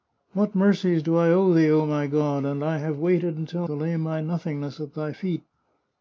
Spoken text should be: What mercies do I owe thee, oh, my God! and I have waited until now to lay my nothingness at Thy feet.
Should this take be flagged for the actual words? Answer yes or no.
yes